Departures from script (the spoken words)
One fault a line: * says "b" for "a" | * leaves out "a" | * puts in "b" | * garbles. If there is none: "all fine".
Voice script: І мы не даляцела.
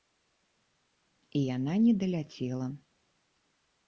* says "яна" for "мы"